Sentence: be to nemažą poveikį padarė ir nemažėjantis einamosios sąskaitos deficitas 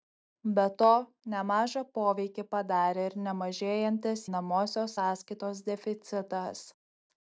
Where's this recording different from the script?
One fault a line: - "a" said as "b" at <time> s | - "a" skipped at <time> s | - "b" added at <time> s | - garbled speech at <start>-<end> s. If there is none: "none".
none